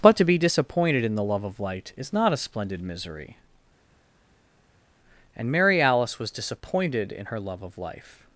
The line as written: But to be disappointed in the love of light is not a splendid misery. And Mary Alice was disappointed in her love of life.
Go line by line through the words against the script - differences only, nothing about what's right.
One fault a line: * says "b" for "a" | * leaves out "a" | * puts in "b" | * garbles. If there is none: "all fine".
all fine